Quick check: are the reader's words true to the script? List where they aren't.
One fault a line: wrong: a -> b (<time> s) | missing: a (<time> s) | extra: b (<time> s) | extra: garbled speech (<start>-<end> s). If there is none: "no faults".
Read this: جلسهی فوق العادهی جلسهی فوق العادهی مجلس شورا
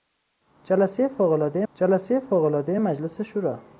no faults